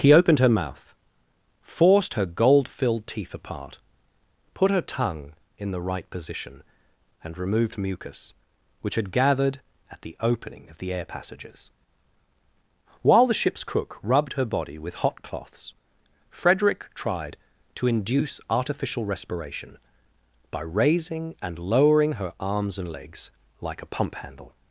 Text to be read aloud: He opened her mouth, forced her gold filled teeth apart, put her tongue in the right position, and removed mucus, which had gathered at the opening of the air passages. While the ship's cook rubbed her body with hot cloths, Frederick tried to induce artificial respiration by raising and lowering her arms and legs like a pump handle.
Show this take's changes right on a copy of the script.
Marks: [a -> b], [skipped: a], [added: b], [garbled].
He opened her mouth, forced her gold filled teeth apart, put her tongue in the right position, and removed mucus, which had gathered at the opening of the air passages. While the ship's cook rubbed her body with hot cloths, Frederick tried to induce artificial respiration by raising and lowering her arms and legs like a pump handle.